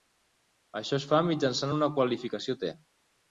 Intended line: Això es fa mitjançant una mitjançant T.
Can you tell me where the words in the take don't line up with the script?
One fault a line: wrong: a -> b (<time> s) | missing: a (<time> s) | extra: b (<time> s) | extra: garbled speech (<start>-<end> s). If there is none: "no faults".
wrong: mitjançant -> qualificació (2.0 s)